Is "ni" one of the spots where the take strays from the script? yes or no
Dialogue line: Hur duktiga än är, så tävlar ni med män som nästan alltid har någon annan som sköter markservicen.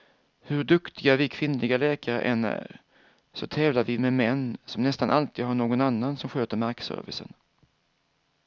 yes